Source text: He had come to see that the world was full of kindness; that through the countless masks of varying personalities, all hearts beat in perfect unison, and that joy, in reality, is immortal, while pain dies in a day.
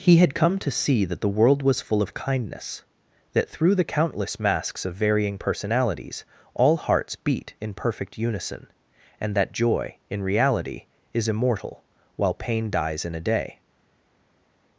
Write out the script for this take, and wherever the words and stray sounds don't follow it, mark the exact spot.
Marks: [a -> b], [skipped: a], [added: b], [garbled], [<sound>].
He had come to see that the world was full of kindness; that through the countless masks of varying personalities, all hearts beat in perfect unison, and that joy, in reality, is immortal, while pain dies in a day.